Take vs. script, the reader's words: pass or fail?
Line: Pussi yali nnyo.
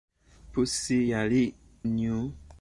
pass